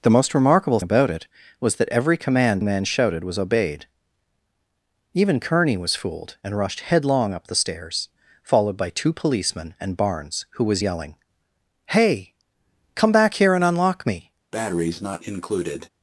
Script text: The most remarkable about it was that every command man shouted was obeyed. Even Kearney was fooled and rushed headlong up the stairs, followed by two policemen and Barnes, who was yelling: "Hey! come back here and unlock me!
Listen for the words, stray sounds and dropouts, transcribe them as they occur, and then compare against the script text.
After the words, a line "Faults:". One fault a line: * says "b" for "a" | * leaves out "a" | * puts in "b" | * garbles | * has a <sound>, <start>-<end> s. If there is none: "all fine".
The most remarkable about it was that every command man shouted was obeyed. Even Kearney was fooled and rushed headlong up the stairs, followed by two policemen and Barnes, who was yelling: "Hey! come back here and unlock me!
Faults:
* has a breath, 14.5-15.9 s